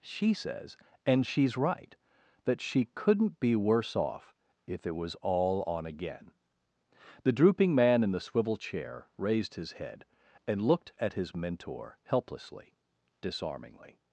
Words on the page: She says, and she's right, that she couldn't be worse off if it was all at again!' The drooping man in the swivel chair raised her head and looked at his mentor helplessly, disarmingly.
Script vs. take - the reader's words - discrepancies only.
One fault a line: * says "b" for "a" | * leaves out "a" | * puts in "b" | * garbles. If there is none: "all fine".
* says "on" for "at"
* says "his" for "her"